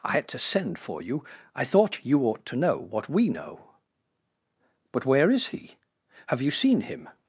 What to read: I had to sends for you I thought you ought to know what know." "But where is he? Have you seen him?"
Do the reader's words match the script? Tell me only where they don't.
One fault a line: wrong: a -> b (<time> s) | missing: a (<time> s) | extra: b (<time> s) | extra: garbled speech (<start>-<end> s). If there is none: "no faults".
wrong: sends -> send (0.4 s)
extra: we (3.1 s)